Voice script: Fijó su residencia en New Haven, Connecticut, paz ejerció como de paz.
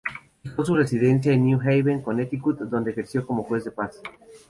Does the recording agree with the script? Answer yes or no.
no